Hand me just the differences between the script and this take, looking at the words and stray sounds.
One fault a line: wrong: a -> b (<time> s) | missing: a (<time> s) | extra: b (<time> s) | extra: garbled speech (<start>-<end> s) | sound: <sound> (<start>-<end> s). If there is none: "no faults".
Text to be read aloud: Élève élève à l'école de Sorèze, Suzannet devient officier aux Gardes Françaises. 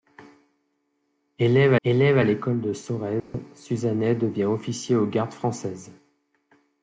sound: dropout (3.2-3.3 s)